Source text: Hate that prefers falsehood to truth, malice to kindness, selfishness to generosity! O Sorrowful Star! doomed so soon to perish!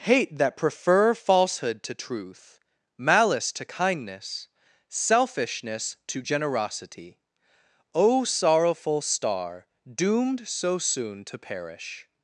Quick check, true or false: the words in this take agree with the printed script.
false